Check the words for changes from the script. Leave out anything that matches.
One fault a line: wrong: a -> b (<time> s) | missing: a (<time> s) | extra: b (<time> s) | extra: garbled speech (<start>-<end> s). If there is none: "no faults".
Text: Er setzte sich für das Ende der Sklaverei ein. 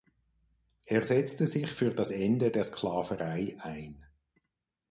no faults